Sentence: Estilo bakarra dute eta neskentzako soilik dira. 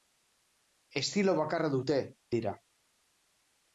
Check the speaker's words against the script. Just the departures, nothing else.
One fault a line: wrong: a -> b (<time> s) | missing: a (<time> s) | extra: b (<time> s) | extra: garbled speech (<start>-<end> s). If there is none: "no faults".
missing: eta neskentzako soilik (2.0 s)